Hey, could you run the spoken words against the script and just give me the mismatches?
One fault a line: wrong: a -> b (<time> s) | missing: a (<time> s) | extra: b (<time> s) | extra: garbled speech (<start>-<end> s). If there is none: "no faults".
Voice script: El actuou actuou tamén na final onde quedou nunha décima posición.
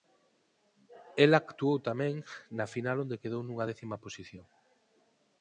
missing: actuou (1.8 s)